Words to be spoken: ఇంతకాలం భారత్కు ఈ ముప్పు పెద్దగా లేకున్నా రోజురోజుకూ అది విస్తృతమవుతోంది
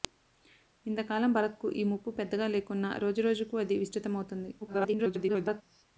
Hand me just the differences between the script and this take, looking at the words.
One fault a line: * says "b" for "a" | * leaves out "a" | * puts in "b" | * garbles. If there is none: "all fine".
* garbles